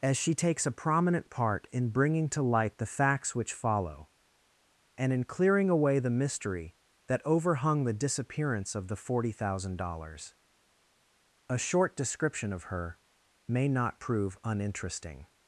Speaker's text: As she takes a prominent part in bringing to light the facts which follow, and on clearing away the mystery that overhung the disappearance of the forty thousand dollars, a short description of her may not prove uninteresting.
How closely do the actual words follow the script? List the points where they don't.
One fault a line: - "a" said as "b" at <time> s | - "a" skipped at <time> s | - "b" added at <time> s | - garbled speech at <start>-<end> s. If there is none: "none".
- "on" said as "in" at 5.1 s